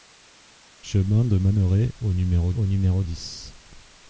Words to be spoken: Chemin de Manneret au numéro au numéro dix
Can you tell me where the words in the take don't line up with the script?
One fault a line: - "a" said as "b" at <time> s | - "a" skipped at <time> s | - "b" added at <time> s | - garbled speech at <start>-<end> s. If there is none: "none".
none